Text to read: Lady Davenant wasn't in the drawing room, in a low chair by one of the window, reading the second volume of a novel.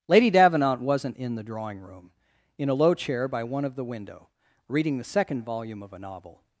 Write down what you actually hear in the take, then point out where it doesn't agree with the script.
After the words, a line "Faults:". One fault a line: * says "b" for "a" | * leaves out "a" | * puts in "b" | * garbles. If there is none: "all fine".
Lady Davenant wasn't in the drawing room, in a low chair by one of the window, reading the second volume of a novel.
Faults:
all fine